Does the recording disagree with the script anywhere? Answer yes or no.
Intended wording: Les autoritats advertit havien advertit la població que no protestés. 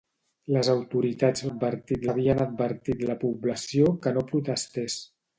no